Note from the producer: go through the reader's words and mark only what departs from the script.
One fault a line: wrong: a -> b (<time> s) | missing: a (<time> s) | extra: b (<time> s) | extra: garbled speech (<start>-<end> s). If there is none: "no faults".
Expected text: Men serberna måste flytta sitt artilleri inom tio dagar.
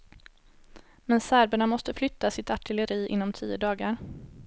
no faults